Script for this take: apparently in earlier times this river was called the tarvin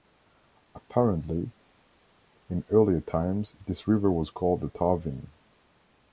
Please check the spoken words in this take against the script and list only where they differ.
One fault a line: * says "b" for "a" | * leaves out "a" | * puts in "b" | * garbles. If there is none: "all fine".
all fine